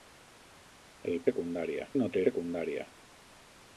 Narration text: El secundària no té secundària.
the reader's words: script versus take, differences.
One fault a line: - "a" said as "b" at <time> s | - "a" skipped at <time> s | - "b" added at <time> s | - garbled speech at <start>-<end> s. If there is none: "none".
none